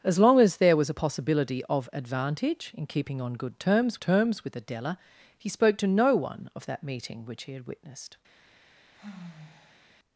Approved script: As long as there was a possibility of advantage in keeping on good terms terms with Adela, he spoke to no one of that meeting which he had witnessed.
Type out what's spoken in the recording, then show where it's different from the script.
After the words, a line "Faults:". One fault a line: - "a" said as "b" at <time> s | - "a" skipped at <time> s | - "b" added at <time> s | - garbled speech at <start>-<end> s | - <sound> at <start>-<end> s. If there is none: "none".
As long as there was a possibility of advantage in keeping on good terms terms with Adela, he spoke to no one of that meeting which he had witnessed.
Faults:
- sigh at 8.9-9.8 s